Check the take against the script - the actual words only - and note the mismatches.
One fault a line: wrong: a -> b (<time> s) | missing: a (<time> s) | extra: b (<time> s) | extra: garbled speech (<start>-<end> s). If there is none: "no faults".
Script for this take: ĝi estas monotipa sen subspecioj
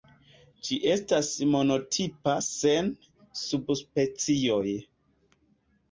no faults